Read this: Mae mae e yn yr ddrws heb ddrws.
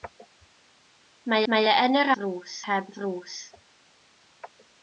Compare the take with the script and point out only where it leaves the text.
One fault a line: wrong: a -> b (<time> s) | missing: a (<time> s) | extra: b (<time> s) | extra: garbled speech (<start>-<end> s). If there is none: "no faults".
no faults